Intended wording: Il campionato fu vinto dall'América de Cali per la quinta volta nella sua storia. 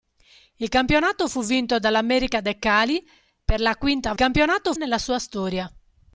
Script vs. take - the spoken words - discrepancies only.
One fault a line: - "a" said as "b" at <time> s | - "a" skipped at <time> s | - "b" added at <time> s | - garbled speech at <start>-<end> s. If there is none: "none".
- "volta" said as "campionato" at 4.1 s